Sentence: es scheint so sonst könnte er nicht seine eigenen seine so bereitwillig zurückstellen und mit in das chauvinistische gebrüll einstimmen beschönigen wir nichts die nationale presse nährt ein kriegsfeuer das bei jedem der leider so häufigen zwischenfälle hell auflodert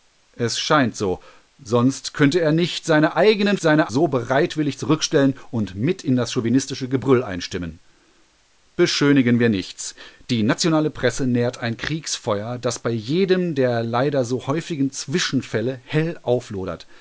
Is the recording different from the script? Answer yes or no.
no